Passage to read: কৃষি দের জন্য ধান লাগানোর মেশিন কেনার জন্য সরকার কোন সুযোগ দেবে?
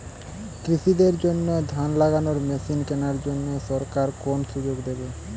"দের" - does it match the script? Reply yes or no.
yes